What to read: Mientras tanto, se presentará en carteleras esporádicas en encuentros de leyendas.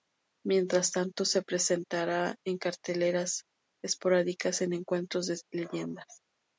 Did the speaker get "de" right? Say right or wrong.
right